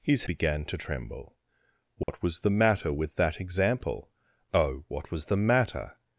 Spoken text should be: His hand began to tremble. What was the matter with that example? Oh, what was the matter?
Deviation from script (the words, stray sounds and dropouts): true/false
true